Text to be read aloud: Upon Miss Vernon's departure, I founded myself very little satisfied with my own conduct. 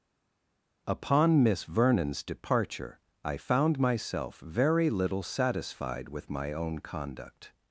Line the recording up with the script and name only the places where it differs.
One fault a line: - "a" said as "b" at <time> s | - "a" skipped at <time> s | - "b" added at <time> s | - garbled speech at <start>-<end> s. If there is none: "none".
- "founded" said as "found" at 3.4 s